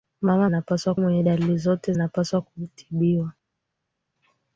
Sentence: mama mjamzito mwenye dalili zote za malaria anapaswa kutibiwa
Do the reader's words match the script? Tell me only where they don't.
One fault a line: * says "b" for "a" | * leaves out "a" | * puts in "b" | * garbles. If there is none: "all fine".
* says "anapaswa" for "mjamzito"
* leaves out "za malaria"